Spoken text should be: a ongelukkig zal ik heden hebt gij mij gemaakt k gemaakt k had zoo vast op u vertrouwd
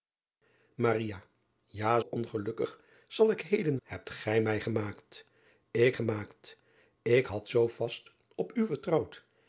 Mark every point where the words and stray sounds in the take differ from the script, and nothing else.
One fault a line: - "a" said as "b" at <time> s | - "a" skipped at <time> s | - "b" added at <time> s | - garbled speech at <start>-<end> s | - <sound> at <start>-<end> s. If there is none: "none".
none